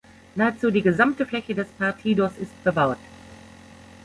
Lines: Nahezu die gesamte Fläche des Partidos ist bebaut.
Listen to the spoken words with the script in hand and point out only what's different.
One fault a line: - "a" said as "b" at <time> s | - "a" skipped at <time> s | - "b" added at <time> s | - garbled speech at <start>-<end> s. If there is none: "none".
none